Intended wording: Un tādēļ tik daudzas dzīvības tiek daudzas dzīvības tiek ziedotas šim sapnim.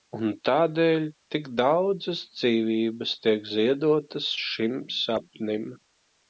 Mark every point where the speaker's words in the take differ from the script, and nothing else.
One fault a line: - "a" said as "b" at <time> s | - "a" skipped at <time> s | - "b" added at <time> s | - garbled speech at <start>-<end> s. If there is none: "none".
- "daudzas dzīvības tiek" skipped at 3.5 s